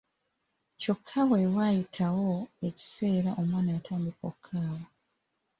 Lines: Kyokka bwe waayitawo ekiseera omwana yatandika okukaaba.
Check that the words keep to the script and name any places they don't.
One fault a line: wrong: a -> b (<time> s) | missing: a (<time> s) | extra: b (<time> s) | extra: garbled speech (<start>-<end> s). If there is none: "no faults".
no faults